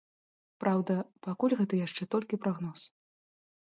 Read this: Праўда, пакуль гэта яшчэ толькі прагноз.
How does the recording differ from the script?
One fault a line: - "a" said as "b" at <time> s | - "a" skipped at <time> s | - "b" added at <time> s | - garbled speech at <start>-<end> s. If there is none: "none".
none